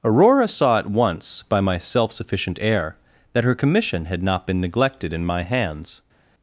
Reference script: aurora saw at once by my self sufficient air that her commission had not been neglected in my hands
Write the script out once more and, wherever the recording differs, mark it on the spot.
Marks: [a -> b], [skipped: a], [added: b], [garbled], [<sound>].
aurora saw at once by my self sufficient air that her commission had not been neglected in my hands